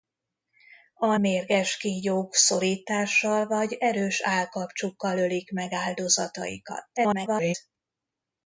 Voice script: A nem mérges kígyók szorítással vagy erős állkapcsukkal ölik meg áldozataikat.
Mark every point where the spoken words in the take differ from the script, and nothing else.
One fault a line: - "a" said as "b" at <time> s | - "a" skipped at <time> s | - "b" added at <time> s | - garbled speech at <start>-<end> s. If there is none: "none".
- "nem" skipped at 1.2 s
- garbled speech at 7.0-7.5 s